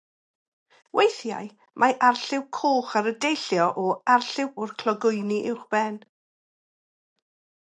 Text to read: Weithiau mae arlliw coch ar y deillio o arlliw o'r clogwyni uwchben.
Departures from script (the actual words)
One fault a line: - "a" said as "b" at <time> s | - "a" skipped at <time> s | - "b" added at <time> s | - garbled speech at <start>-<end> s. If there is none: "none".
none